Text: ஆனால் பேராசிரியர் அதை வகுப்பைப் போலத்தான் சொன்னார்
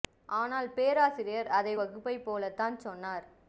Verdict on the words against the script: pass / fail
pass